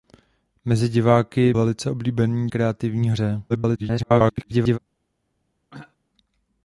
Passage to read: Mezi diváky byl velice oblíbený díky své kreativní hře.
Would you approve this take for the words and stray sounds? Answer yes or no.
no